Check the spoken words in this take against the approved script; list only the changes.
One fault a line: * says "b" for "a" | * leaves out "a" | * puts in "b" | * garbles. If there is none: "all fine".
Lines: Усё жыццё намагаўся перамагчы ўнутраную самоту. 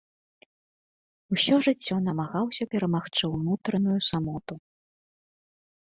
all fine